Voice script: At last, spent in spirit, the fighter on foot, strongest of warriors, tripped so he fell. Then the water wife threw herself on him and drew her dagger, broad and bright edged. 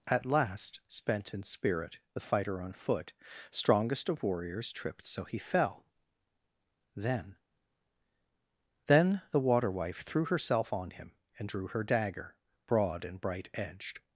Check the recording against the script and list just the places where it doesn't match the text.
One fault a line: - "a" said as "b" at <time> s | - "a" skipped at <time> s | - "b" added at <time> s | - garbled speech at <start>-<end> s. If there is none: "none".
- "Then" added at 8.9 s